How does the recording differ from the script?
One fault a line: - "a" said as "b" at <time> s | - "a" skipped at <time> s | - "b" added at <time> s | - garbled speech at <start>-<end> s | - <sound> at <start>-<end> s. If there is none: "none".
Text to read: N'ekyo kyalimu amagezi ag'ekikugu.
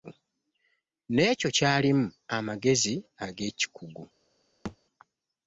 - thud at 4.6-4.8 s